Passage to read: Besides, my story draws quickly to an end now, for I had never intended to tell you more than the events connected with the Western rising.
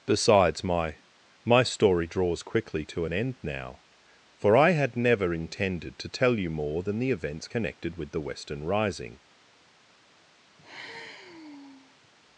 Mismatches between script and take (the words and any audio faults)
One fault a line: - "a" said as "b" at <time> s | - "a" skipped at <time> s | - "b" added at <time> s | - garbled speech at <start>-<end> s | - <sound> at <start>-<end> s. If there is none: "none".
- "my" added at 1.4 s
- sigh at 10.6-12.1 s